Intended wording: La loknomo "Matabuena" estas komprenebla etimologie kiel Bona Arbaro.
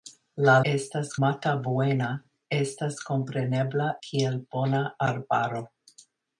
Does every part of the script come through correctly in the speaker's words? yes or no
no